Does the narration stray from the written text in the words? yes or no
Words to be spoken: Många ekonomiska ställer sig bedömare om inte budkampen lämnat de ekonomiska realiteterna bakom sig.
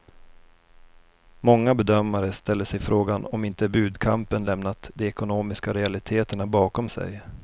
yes